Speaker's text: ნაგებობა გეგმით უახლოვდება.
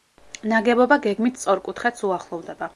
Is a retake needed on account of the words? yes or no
yes